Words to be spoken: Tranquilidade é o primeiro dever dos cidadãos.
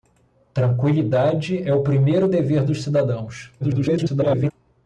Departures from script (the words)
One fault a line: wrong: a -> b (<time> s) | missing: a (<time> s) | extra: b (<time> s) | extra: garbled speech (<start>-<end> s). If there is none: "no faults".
extra: garbled speech (3.6-4.5 s)